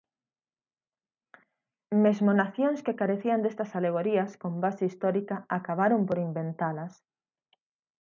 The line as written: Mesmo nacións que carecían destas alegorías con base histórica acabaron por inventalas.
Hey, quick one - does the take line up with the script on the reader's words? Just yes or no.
yes